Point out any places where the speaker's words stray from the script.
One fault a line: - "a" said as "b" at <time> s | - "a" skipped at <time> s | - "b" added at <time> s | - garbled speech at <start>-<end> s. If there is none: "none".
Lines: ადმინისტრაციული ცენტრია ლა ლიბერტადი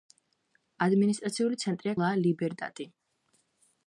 none